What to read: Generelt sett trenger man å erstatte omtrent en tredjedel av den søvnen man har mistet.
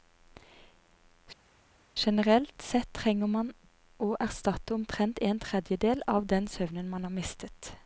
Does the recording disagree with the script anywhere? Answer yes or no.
no